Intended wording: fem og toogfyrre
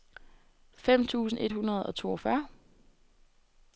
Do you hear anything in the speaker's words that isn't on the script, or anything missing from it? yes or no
yes